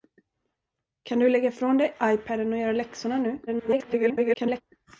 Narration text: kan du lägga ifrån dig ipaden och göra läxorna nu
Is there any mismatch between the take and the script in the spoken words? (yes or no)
yes